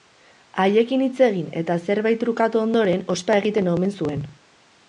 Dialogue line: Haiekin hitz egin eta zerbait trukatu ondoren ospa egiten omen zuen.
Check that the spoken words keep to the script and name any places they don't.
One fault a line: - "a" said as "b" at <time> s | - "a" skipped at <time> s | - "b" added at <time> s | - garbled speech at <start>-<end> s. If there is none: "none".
none